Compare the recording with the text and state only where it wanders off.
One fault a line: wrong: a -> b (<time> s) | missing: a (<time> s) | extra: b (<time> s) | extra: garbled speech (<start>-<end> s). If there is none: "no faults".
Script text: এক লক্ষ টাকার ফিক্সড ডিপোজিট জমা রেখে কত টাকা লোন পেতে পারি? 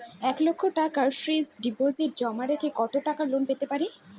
no faults